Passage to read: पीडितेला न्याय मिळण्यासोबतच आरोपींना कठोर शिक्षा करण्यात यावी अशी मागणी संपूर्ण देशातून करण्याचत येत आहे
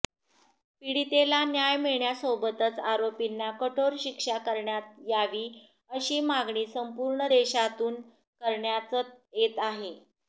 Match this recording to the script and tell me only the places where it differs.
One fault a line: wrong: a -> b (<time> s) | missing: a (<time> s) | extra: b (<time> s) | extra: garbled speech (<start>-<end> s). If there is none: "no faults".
no faults